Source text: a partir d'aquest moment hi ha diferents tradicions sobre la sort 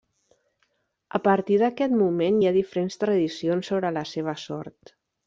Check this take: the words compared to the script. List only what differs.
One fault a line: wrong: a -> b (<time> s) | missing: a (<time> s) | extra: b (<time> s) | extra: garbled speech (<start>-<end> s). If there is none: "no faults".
extra: seva (4.1 s)